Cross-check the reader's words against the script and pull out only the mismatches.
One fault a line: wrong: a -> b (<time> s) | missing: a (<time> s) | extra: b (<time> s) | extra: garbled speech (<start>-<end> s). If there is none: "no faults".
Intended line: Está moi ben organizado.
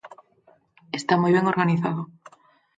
no faults